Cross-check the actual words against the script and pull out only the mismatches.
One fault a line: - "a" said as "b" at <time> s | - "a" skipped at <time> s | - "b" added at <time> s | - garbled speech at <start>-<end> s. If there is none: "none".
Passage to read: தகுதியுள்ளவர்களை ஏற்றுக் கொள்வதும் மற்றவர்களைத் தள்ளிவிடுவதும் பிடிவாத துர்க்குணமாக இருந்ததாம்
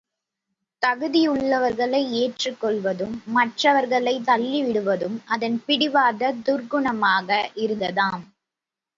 - "அதன்" added at 5.3 s